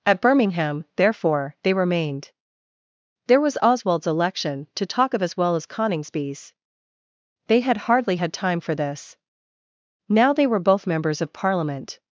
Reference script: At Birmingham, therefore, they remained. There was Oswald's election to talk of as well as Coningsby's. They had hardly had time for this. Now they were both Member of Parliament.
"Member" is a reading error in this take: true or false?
true